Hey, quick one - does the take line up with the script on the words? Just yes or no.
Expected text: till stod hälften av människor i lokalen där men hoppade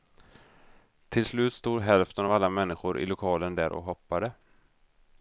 no